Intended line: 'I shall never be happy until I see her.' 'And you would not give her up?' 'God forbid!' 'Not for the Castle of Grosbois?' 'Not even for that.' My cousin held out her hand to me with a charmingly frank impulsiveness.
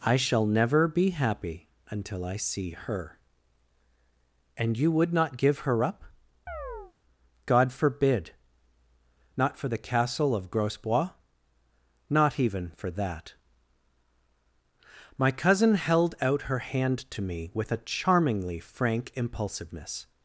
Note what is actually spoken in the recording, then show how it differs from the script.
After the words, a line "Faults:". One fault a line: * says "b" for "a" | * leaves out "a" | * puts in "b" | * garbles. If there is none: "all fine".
'I shall never be happy until I see her.' 'And you would not give her up?' 'God forbid!' 'Not for the Castle of Grosbois?' 'Not even for that.' My cousin held out her hand to me with a charmingly frank impulsiveness.
Faults:
all fine